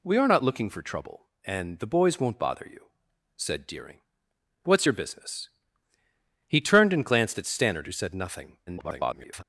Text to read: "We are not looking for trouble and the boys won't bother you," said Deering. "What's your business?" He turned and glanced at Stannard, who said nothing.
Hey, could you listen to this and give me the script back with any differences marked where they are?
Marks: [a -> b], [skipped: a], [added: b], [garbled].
"We are not looking for trouble and the boys won't bother you," said Deering. "What's your business?" He turned and glanced at Stannard, who said nothing. [garbled]